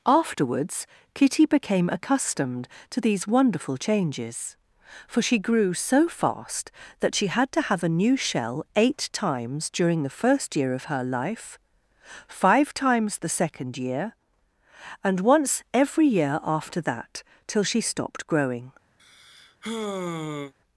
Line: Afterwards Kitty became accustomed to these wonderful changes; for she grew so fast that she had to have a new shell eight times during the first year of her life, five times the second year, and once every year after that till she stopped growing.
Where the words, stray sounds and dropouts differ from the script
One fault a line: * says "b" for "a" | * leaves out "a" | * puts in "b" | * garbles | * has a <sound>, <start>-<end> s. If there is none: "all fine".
* has a sigh, 19.0-20.5 s